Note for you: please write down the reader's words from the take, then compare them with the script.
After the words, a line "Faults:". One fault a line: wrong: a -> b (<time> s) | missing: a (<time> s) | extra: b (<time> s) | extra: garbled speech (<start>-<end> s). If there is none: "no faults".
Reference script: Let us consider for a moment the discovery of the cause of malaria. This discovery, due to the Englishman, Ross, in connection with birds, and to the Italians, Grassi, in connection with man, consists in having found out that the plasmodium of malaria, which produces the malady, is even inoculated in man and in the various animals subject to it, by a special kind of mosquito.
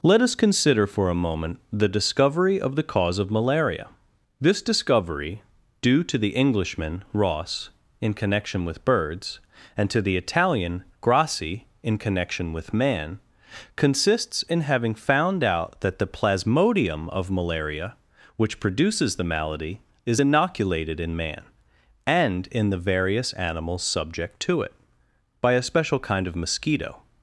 Let us consider for a moment the discovery of the cause of malaria. This discovery, due to the Englishman, Ross, in connection with birds, and to the Italian, Grassi, in connection with man, consists in having found out that the plasmodium of malaria, which produces the malady, is inoculated in man and in the various animals subject to it, by a special kind of mosquito.
Faults:
wrong: Italians -> Italian (10.2 s)
missing: even (20.2 s)